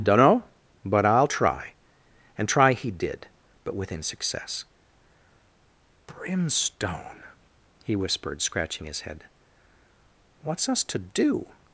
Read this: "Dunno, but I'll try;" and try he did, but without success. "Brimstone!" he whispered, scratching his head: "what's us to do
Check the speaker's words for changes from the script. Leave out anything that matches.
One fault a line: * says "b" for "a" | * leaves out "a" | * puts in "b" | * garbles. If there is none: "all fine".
* says "within" for "without"